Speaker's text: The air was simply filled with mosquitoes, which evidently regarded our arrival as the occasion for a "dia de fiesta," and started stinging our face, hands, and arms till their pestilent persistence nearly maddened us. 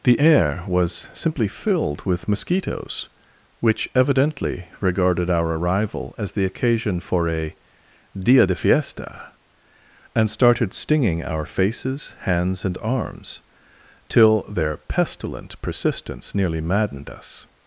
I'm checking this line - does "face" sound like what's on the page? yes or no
no